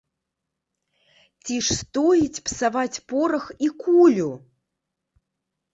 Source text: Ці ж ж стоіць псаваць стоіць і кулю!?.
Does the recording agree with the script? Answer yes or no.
no